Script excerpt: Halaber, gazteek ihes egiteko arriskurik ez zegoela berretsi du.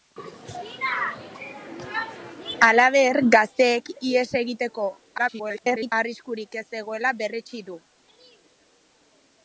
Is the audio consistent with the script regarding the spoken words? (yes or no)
no